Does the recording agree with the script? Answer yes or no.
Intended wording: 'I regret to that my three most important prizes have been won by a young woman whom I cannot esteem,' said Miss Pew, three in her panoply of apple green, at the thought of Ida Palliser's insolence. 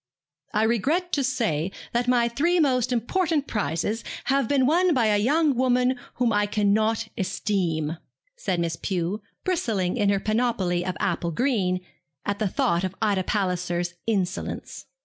no